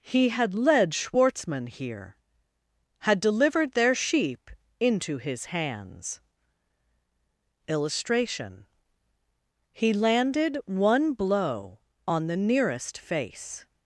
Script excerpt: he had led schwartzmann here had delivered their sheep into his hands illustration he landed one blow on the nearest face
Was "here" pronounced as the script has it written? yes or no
yes